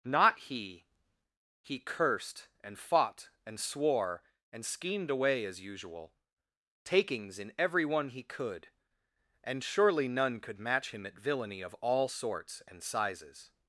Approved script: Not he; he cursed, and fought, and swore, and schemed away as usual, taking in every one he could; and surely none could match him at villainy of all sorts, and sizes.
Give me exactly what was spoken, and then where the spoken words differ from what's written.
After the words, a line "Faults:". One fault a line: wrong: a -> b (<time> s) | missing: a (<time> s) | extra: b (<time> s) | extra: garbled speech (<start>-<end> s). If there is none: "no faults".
Not he; he cursed, and fought, and swore, and schemed away as usual, takings in every one he could; and surely none could match him at villainy of all sorts, and sizes.
Faults:
wrong: taking -> takings (6.9 s)